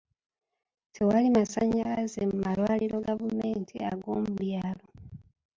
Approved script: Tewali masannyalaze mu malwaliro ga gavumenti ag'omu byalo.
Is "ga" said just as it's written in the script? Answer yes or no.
no